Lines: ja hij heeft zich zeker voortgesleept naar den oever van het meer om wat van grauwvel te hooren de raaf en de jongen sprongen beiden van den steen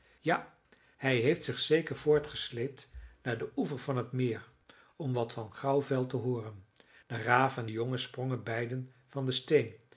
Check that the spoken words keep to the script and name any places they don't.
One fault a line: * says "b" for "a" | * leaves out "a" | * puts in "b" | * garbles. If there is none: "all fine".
all fine